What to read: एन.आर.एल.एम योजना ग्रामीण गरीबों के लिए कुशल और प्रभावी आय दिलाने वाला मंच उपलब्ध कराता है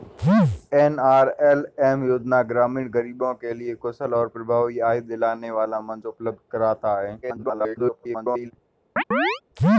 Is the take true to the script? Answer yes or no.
no